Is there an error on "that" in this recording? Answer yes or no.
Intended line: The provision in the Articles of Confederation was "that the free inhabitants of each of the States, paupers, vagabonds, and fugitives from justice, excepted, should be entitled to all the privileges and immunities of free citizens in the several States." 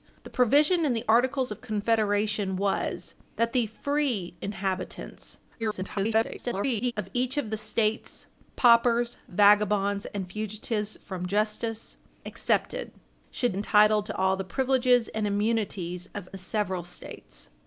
no